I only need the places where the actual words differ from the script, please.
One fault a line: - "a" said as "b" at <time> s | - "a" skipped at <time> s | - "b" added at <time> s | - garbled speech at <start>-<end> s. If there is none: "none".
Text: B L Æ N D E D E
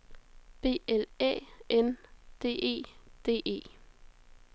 none